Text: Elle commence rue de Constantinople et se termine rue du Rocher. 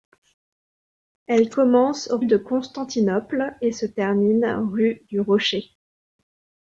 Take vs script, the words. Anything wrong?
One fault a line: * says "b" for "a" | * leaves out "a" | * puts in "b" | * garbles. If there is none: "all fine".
* leaves out "rue"